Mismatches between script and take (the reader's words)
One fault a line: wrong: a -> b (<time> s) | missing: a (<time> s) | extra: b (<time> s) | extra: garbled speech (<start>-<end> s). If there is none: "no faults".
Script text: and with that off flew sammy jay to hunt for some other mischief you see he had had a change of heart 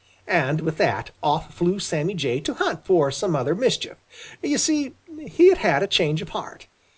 no faults